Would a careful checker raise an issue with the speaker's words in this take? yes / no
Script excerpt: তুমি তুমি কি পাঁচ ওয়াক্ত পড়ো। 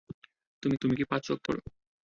no